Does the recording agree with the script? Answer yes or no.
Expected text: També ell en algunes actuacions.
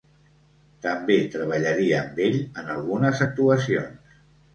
no